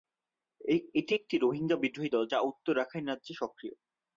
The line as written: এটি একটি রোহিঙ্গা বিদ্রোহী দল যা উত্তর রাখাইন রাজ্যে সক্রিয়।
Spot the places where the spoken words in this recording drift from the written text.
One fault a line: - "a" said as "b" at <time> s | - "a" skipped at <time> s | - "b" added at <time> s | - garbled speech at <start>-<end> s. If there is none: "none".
none